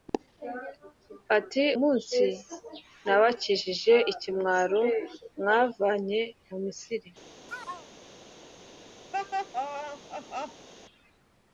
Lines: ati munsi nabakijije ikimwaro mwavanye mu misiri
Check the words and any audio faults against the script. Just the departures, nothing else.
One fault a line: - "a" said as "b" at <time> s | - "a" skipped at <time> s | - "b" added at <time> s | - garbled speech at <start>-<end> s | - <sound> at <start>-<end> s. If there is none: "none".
- chirp at 7.5-7.9 s
- laugh at 9.1-10.7 s